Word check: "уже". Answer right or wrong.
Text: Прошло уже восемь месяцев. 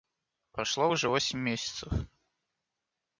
right